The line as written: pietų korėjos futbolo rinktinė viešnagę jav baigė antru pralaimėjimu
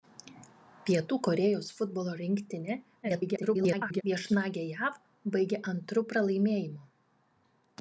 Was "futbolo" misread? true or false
false